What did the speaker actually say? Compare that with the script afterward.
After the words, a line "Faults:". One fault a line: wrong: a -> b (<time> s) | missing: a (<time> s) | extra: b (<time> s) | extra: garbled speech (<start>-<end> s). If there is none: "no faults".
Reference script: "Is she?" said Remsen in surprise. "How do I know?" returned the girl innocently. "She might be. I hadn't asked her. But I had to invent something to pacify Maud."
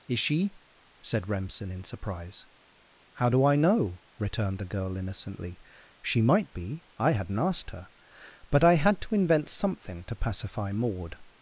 "Is she?" said Remsen in surprise. "How do I know?" returned the girl innocently. "She might be. I hadn't asked her. But I had to invent something to pacify Maud."
Faults:
no faults